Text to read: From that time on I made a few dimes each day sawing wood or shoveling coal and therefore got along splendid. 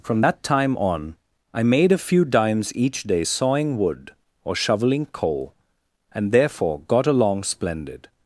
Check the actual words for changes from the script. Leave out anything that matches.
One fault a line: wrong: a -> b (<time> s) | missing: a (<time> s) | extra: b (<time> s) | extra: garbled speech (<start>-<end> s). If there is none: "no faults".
no faults